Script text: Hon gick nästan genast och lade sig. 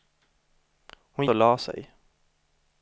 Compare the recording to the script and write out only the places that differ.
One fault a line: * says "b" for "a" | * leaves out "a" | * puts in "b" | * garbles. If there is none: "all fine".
* leaves out "gick nästan genast"